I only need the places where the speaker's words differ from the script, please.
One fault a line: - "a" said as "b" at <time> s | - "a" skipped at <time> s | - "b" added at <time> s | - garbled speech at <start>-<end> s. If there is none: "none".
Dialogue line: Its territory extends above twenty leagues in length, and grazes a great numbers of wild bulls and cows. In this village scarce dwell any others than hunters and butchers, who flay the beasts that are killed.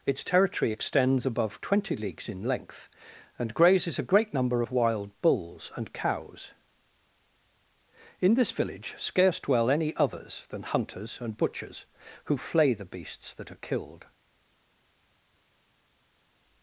- "numbers" said as "number" at 4.3 s